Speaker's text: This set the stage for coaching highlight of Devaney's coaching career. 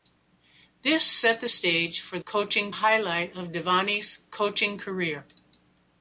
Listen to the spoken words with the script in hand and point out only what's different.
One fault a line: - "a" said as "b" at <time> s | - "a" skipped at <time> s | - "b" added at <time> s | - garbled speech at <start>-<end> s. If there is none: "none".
none